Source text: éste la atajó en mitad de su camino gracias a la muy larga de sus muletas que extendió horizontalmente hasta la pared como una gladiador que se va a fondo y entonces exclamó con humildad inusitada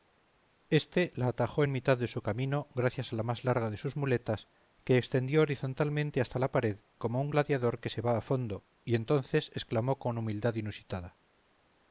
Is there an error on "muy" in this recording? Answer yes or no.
yes